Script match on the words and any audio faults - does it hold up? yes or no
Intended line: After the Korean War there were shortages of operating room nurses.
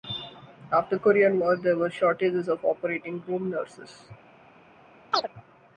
no